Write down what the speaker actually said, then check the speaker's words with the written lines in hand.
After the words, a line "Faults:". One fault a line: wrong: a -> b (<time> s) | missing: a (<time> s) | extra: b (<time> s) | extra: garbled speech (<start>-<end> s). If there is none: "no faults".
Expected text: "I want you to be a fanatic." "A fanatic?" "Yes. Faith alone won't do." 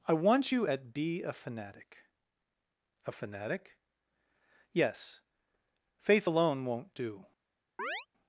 "I want you at be a fanatic." "A fanatic?" "Yes. Faith alone won't do."
Faults:
wrong: to -> at (0.6 s)